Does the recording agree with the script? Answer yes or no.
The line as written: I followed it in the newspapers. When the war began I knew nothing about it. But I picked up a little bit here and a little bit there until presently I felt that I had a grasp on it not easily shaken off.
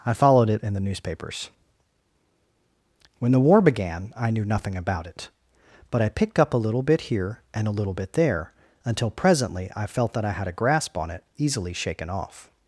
no